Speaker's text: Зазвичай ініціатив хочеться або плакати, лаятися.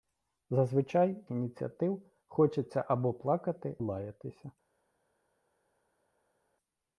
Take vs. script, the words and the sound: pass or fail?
pass